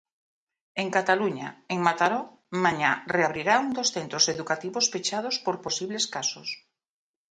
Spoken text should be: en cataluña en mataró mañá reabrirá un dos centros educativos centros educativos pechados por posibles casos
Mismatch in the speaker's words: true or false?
true